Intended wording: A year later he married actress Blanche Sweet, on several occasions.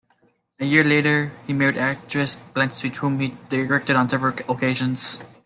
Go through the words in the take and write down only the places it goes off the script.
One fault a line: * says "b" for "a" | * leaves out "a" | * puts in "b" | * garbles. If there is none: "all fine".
* puts in "whom he directed"